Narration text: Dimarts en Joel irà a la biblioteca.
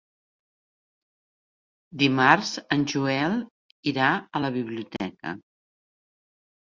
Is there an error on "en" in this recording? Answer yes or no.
no